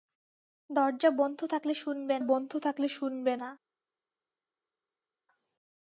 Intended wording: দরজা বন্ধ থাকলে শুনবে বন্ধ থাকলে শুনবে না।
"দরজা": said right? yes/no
yes